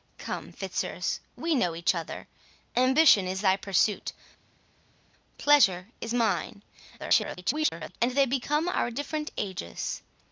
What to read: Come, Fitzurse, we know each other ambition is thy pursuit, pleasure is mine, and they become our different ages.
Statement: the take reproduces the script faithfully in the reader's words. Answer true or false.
false